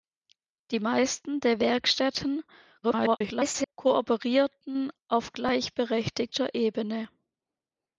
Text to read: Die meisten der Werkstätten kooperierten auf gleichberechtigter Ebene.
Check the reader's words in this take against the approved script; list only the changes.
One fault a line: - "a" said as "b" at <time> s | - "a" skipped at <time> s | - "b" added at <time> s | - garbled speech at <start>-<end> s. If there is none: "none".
- garbled speech at 2.8-3.7 s